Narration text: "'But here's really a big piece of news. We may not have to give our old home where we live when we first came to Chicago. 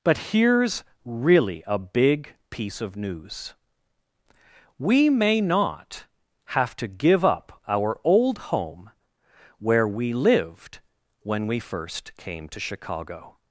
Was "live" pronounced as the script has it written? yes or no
no